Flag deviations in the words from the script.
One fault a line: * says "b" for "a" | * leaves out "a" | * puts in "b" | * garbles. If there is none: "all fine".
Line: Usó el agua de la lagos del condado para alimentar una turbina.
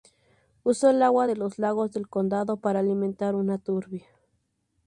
* says "los" for "la"